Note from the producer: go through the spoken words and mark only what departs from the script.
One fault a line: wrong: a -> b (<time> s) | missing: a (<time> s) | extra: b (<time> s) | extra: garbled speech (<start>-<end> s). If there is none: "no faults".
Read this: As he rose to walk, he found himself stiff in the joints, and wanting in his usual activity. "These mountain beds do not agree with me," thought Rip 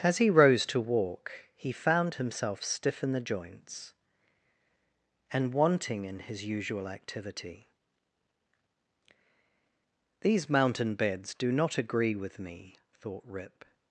no faults